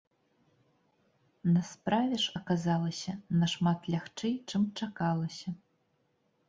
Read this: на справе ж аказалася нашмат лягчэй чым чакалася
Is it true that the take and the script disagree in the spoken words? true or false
false